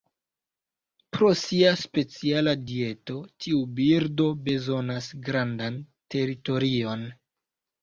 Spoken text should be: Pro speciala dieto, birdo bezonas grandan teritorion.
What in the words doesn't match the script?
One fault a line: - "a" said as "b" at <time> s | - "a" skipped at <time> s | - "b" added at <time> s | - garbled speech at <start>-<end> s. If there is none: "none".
- "sia" added at 1.4 s
- "tiu" added at 3.5 s